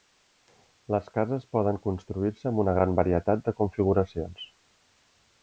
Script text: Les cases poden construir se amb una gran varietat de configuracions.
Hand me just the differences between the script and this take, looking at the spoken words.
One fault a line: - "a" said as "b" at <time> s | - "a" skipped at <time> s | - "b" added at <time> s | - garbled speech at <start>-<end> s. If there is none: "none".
none